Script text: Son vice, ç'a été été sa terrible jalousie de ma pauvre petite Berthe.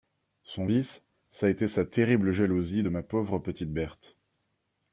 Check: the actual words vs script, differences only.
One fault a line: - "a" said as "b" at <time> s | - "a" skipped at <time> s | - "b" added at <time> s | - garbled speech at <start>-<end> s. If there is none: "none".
- "été" skipped at 1.7 s